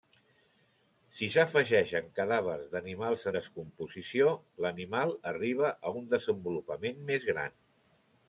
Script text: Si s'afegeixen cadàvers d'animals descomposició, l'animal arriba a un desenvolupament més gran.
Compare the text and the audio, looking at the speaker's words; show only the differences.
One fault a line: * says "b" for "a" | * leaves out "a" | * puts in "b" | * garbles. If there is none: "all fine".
all fine